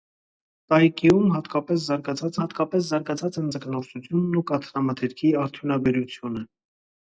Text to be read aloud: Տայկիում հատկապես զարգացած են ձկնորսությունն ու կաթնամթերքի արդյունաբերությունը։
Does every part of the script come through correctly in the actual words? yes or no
no